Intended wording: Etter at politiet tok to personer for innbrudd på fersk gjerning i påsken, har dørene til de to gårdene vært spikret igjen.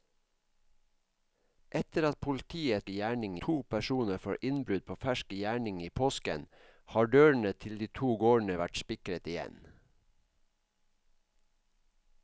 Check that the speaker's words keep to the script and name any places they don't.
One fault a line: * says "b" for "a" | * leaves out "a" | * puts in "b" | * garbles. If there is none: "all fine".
* says "gjerning" for "tok"